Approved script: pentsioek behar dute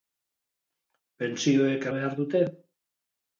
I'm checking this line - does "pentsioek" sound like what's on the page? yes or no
yes